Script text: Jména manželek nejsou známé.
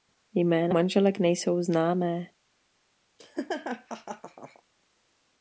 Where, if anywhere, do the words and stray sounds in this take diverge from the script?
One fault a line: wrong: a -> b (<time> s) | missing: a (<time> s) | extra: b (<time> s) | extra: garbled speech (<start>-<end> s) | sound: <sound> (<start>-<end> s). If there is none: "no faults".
sound: laugh (3.2-4.6 s)